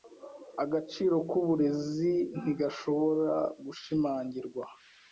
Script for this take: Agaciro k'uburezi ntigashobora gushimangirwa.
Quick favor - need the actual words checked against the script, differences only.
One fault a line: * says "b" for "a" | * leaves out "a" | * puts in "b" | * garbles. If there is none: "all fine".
all fine